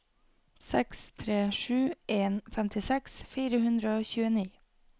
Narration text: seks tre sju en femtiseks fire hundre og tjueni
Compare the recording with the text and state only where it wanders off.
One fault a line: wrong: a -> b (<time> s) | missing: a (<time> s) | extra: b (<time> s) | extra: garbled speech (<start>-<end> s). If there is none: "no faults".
no faults